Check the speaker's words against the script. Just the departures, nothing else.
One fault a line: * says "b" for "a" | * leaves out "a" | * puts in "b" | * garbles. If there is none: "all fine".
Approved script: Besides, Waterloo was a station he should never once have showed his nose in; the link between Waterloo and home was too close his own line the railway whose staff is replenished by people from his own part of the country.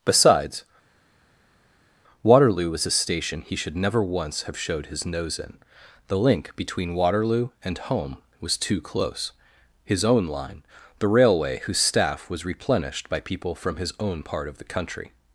* says "was" for "is"